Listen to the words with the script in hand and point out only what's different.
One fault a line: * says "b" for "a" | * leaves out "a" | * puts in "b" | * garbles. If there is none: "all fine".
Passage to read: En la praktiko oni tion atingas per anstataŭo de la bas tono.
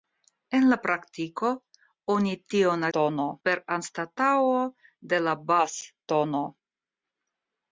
* says "tono" for "atingas"